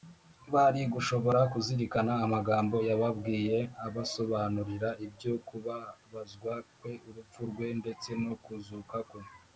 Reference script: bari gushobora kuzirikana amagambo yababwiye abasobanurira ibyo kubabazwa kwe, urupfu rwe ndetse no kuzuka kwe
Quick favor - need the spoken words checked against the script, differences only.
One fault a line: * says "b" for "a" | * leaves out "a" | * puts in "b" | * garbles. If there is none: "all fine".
all fine